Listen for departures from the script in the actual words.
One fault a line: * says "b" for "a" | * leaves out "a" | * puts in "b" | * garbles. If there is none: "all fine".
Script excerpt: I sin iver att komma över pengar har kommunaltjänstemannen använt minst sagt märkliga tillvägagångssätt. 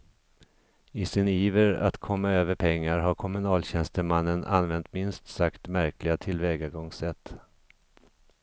all fine